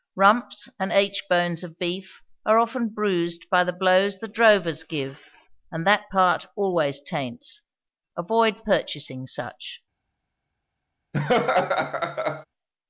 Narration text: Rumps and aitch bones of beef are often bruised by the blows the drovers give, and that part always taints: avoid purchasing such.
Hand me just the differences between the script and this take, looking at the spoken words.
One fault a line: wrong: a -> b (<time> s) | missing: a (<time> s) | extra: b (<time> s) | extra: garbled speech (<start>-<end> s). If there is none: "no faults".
no faults